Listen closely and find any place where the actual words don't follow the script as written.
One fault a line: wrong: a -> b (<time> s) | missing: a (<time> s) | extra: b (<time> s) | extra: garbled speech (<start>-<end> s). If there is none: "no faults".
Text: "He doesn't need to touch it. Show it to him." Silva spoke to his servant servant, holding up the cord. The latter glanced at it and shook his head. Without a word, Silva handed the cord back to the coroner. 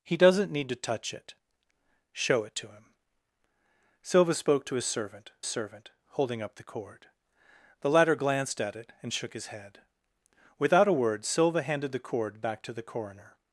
no faults